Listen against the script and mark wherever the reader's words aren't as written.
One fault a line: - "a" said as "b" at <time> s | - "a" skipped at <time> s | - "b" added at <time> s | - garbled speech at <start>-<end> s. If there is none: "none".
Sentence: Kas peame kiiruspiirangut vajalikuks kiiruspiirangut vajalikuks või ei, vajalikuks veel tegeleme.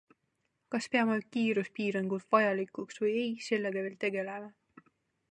- "kiiruspiirangut vajalikuks" skipped at 3.0 s
- "vajalikuks" said as "sellega" at 3.5 s